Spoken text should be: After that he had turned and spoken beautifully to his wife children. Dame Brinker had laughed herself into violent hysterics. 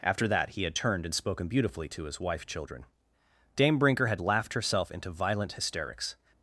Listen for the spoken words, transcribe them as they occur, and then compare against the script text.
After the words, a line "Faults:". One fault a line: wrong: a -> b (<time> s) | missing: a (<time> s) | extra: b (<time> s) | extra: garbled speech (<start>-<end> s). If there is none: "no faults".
After that he had turned and spoken beautifully to his wife children. Dame Brinker had laughed herself into violent hysterics.
Faults:
no faults